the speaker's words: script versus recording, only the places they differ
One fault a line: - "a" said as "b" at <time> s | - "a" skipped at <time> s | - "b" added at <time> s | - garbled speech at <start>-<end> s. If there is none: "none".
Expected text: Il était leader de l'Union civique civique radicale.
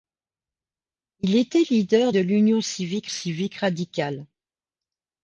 none